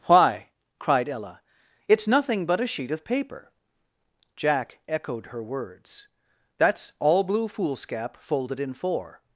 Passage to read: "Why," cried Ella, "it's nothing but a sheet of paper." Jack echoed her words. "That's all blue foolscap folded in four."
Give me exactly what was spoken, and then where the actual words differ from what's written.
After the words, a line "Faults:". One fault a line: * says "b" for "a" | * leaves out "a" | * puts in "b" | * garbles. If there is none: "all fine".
"Why," cried Ella, "it's nothing but a sheet of paper." Jack echoed her words. "That's all blue foolscap folded in four."
Faults:
all fine